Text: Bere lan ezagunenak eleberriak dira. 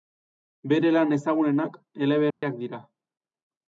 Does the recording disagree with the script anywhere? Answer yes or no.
no